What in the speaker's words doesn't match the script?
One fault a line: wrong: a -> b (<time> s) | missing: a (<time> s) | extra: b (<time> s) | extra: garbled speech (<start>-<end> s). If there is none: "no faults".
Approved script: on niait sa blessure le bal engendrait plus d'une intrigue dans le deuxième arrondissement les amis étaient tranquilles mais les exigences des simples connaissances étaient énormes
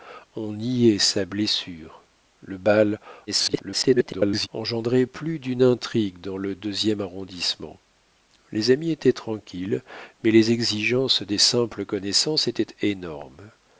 extra: garbled speech (3.3-4.5 s)